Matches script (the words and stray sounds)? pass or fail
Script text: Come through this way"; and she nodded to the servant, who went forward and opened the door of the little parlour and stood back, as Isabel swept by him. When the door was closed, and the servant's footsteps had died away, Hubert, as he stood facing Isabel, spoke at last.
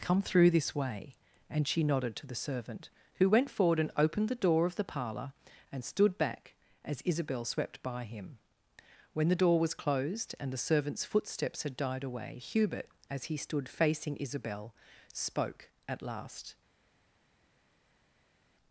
fail